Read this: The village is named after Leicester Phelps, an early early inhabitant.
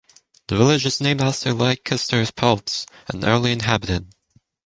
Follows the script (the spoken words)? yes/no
no